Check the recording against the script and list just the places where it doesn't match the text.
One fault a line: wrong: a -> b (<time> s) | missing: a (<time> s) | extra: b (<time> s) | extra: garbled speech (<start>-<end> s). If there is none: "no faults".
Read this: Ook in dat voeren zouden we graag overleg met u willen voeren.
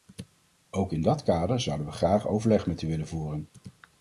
wrong: voeren -> kader (1.2 s)